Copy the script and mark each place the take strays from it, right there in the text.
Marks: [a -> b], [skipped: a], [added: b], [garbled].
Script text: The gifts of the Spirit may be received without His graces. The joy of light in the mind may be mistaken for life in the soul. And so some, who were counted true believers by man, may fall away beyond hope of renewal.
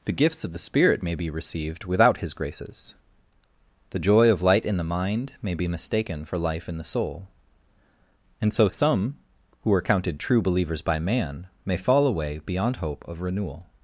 The gifts of the Spirit may be received without His graces. The joy of light in the mind may be mistaken for life in the soul. And so some, who [were -> are] counted true believers by man, may fall away beyond hope of renewal.